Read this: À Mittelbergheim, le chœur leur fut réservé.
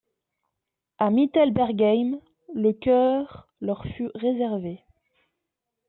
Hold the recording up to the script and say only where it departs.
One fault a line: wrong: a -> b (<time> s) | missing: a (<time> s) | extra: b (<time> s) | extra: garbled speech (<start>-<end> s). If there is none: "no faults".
no faults